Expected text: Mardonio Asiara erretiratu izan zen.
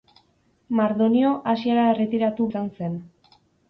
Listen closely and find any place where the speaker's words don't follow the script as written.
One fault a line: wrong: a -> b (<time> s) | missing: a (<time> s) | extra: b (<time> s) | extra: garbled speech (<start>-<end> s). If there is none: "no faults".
no faults